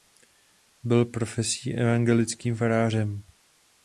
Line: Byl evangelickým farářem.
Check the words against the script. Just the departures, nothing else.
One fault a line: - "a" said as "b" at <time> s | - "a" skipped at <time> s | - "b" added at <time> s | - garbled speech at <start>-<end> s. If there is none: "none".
- "profesí" added at 1.1 s